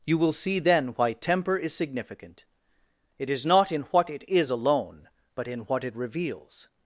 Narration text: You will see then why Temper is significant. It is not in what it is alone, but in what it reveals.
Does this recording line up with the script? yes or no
yes